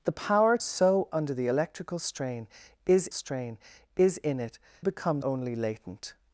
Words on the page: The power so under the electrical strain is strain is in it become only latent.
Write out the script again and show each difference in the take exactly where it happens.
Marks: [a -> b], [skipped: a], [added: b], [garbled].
The power so under the electrical strain is strain is in it become only latent.